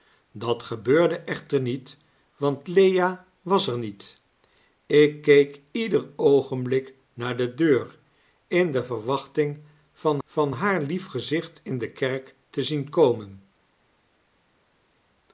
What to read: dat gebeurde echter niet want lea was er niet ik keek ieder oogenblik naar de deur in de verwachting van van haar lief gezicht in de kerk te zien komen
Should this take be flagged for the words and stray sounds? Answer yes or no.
no